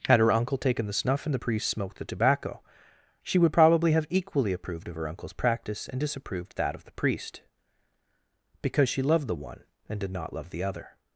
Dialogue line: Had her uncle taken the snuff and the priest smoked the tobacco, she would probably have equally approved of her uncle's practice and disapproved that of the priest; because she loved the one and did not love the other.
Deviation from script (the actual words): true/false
false